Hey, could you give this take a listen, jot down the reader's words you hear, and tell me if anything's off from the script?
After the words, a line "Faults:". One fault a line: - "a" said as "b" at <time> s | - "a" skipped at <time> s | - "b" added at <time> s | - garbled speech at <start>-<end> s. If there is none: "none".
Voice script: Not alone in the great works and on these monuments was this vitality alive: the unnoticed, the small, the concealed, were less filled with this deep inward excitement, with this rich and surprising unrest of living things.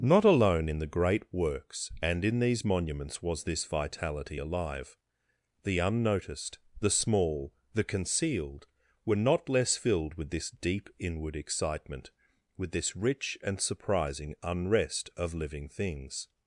Not alone in the great works and in these monuments was this vitality alive: the unnoticed, the small, the concealed, were not less filled with this deep inward excitement, with this rich and surprising unrest of living things.
Faults:
- "on" said as "in" at 2.2 s
- "not" added at 9.2 s